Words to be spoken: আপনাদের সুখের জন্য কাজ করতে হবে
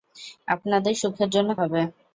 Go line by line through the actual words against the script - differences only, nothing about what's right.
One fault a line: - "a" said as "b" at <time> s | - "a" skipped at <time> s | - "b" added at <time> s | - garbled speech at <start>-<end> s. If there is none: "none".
- "কাজ করতে" skipped at 1.5 s